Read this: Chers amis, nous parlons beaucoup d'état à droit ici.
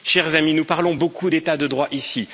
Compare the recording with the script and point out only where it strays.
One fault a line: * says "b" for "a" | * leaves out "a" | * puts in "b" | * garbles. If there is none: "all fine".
* says "de" for "à"